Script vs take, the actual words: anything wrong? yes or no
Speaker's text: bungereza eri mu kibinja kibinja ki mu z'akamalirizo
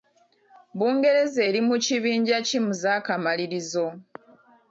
yes